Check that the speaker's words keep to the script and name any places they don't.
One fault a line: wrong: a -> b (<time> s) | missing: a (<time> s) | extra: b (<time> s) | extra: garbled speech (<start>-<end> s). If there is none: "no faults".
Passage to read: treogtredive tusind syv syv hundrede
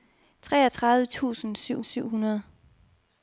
no faults